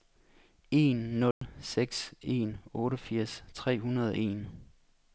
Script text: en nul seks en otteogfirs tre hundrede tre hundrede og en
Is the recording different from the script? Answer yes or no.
yes